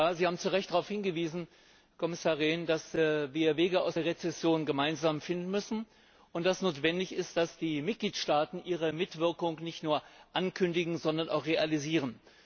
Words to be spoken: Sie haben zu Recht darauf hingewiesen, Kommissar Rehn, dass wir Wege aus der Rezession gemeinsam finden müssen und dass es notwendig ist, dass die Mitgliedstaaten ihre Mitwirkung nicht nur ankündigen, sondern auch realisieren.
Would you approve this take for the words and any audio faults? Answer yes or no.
yes